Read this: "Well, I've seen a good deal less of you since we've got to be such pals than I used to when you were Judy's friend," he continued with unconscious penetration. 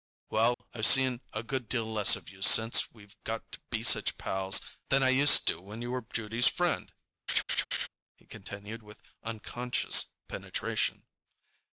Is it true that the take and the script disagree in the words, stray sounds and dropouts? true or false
true